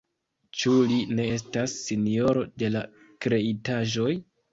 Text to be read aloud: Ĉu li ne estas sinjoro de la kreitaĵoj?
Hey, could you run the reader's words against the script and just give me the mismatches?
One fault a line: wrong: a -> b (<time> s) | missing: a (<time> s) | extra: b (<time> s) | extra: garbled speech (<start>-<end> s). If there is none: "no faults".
no faults